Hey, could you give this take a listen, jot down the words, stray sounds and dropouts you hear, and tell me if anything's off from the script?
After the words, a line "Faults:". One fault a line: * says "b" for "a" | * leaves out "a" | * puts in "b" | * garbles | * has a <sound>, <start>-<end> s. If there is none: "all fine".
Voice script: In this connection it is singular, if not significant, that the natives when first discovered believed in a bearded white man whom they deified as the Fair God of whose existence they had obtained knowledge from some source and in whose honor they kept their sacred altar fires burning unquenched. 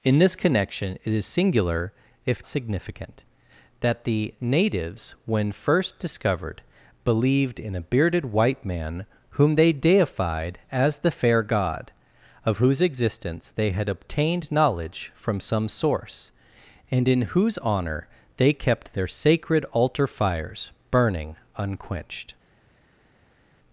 In this connection it is singular, if significant, that the natives when first discovered believed in a bearded white man whom they deified as the Fair God of whose existence they had obtained knowledge from some source and in whose honor they kept their sacred altar fires burning unquenched.
Faults:
* leaves out "not"